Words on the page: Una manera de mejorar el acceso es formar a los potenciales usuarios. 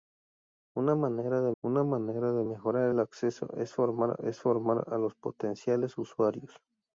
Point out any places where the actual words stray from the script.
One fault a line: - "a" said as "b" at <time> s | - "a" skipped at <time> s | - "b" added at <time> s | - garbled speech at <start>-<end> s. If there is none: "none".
- "una manera de" added at 1.6 s
- "es formar" added at 4.2 s